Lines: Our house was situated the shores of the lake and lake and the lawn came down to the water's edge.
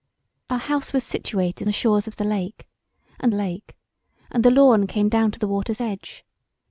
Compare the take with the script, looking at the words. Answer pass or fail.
pass